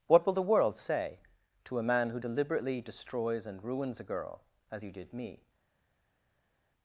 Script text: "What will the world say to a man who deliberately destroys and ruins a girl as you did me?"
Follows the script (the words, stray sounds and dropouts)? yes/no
yes